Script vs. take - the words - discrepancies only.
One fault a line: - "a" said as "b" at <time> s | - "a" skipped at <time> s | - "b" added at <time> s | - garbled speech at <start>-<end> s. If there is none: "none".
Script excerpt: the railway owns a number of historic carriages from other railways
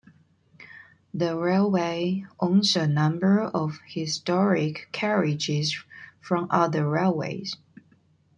none